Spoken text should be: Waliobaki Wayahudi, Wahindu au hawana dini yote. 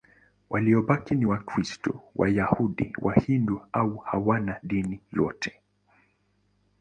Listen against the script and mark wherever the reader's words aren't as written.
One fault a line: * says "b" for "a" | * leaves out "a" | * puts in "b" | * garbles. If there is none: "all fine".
* puts in "ni Wakristo"